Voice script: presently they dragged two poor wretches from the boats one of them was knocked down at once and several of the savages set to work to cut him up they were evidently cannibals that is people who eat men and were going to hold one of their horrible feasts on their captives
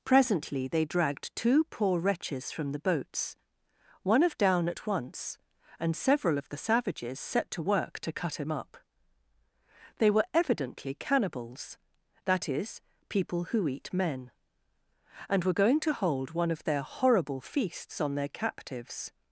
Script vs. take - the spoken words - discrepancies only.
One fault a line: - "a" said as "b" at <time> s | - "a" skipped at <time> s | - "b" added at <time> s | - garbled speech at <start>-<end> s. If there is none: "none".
- "them was knocked" skipped at 4.4 s